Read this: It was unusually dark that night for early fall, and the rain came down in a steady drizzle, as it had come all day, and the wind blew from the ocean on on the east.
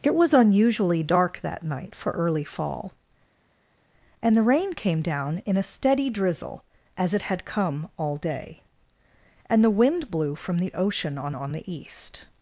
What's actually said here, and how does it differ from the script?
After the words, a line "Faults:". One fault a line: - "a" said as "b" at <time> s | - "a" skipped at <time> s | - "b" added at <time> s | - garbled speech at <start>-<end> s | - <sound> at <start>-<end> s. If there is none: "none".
It was unusually dark that night for early fall, and the rain came down in a steady drizzle, as it had come all day, and the wind blew from the ocean on on the east.
Faults:
none